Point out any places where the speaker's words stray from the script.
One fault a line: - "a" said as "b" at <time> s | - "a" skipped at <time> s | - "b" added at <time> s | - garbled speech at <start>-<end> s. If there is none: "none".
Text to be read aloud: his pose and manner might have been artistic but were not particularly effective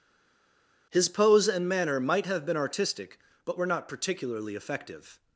none